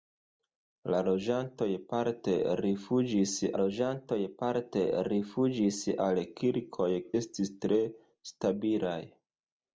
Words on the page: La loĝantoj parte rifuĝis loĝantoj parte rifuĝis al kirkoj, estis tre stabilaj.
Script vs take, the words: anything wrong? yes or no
no